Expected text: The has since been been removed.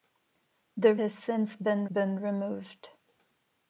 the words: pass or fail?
pass